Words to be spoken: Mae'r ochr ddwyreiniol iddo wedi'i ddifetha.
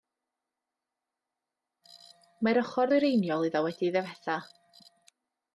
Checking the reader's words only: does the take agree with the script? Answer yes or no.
yes